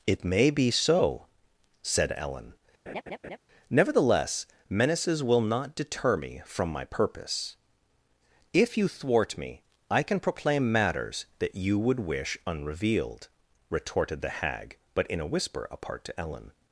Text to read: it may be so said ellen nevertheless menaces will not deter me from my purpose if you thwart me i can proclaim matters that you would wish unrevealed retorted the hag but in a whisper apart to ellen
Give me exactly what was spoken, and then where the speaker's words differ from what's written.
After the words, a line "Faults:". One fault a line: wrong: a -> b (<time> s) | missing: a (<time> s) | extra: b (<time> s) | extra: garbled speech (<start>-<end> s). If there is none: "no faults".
it may be so said ellen nevertheless menaces will not deter me from my purpose if you thwart me i can proclaim matters that you would wish unrevealed retorted the hag but in a whisper apart to ellen
Faults:
no faults